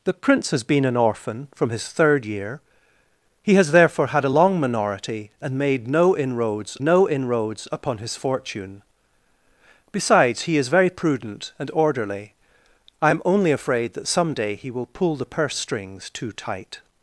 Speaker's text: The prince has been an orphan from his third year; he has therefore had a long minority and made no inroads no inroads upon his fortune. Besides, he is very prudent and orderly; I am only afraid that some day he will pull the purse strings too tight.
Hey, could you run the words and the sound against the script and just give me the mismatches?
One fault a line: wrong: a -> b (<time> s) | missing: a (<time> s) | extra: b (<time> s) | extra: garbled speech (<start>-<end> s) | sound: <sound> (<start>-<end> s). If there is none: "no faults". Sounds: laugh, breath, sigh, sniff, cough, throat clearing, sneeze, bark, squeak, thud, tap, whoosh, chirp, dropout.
no faults